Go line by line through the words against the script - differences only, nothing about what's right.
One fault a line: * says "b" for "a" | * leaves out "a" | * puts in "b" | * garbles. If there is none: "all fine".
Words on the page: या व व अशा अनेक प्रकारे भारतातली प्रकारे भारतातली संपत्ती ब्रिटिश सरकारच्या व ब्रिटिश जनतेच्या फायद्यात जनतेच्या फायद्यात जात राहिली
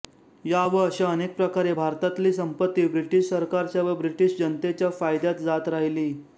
* leaves out "व"
* leaves out "प्रकारे भारतातली"
* leaves out "जनतेच्या फायद्यात"